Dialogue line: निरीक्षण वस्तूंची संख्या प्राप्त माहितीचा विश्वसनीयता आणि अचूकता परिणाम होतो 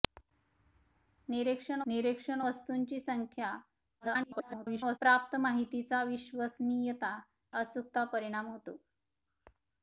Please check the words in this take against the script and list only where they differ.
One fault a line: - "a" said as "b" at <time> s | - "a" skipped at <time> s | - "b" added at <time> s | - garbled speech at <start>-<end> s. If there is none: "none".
- "निरीक्षण" added at 1.9 s
- garbled speech at 4.0-5.0 s
- "आणि" skipped at 7.2 s